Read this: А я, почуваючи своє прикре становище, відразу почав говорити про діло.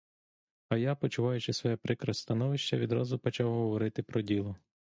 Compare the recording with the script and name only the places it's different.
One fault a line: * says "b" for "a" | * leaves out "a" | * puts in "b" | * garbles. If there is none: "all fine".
all fine